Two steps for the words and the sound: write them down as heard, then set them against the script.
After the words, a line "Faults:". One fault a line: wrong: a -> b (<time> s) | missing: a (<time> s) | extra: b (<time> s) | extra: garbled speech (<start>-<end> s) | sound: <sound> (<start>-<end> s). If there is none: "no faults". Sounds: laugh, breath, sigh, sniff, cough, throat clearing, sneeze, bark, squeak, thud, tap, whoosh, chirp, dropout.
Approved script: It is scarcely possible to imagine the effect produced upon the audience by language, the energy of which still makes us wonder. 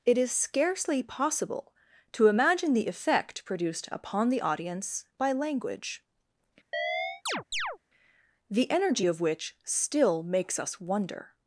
It is scarcely possible to imagine the effect produced upon the audience by language, the energy of which still makes us wonder.
Faults:
sound: chirp (6.7-7.8 s)